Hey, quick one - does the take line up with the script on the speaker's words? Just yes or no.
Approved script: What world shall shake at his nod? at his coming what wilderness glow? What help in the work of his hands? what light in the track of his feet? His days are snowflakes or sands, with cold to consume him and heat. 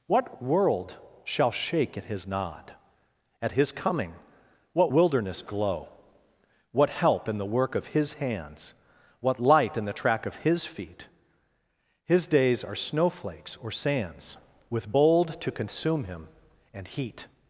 no